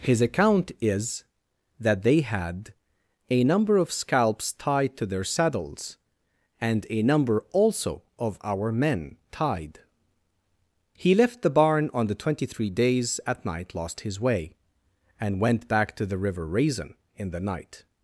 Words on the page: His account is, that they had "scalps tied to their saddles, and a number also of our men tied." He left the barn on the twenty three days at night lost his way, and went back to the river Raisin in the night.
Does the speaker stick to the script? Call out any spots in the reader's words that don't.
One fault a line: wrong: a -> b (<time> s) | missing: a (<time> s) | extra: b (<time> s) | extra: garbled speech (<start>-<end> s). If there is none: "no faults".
extra: a number of (3.3 s)